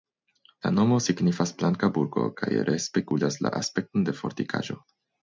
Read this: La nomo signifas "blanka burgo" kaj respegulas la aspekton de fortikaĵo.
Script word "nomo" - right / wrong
right